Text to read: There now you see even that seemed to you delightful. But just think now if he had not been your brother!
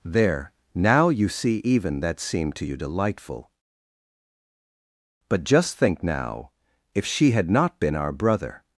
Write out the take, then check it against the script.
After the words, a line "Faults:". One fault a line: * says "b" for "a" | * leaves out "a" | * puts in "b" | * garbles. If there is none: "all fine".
There now you see even that seemed to you delightful. But just think now if she had not been our brother!
Faults:
* says "she" for "he"
* says "our" for "your"